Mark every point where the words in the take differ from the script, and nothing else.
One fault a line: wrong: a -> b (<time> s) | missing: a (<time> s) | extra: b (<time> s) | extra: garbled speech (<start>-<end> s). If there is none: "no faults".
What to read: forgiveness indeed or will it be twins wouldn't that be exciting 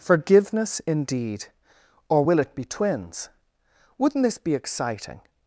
wrong: that -> this (4.2 s)